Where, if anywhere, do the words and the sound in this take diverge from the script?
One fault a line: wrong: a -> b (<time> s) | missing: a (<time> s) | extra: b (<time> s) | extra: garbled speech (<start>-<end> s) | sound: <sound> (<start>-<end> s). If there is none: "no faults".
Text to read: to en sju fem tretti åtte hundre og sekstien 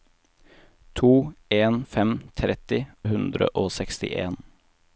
missing: sju (1.9 s)
missing: åtte (2.8 s)